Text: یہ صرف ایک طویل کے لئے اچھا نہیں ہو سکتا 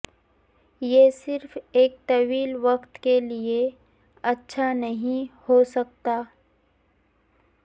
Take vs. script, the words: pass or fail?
fail